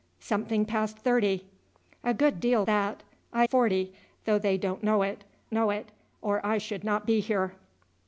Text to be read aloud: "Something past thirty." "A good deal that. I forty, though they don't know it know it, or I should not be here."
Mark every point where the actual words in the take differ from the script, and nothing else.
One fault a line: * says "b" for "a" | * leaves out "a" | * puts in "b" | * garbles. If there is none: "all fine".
all fine